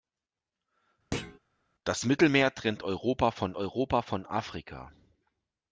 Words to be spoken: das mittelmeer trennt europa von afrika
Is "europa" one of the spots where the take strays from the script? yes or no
no